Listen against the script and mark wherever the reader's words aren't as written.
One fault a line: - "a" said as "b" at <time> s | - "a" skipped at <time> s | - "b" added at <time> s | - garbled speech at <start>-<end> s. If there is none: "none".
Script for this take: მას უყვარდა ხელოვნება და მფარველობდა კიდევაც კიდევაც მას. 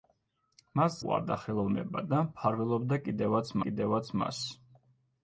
none